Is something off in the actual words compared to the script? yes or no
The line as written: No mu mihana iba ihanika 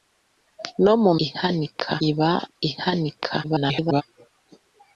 yes